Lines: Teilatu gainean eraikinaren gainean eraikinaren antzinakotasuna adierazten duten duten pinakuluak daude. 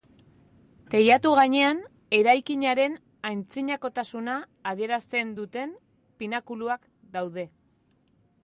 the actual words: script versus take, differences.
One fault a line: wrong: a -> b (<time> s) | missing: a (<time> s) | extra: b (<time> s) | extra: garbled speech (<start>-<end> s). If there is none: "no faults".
missing: gainean eraikinaren (3.0 s)
missing: duten (5.7 s)